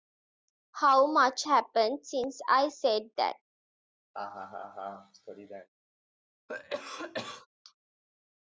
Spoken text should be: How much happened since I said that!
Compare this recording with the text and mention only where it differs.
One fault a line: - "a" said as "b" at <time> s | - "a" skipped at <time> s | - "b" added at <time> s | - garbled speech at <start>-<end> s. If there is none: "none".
none